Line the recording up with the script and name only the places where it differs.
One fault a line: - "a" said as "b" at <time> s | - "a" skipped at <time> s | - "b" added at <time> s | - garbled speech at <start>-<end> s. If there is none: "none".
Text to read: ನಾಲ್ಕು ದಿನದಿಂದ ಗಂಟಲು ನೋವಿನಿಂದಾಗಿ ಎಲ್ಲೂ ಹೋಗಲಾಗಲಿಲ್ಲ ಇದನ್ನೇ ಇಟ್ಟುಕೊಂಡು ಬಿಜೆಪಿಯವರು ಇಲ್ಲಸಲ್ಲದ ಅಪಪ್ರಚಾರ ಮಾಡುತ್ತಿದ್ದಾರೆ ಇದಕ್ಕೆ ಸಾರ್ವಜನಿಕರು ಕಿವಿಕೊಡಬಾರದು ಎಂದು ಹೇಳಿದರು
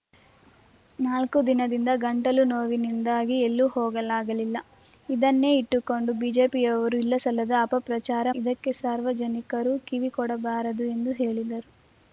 - "ಮಾಡುತ್ತಿದ್ದಾರೆ" skipped at 8.3 s